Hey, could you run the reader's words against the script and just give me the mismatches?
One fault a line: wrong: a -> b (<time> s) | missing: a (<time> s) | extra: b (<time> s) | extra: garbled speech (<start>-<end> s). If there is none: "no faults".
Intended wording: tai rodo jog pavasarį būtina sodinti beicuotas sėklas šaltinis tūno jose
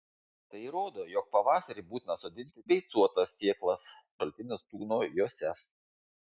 no faults